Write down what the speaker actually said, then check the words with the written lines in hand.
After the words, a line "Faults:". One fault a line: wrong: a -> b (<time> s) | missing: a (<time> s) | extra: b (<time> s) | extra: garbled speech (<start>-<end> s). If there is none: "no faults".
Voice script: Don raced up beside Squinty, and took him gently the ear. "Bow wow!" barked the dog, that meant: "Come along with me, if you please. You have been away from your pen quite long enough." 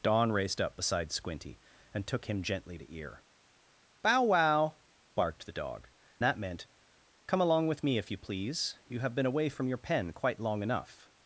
Don raced up beside Squinty, and took him gently the ear. "Bow wow!" barked the dog, that meant: "Come along with me, if you please. You have been away from your pen quite long enough."
Faults:
no faults